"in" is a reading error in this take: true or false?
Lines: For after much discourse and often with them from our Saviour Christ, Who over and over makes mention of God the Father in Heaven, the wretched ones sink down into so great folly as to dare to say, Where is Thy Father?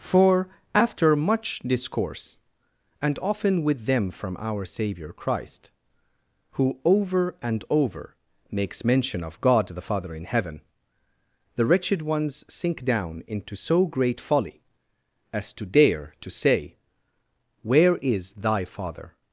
false